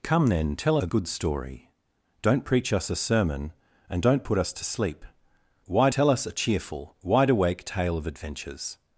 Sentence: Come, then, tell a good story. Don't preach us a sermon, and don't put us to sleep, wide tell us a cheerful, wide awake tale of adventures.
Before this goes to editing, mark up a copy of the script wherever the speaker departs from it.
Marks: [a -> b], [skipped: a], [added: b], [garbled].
Come, then, tell a good story. Don't preach us a sermon, and don't put us to sleep, wide tell us a cheerful, wide awake tale of adventures.